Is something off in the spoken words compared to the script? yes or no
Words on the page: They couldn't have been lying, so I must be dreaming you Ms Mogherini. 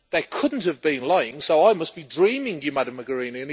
no